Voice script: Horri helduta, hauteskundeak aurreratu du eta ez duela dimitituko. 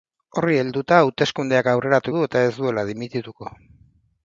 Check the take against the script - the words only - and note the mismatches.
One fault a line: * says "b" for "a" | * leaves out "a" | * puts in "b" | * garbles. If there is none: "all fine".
all fine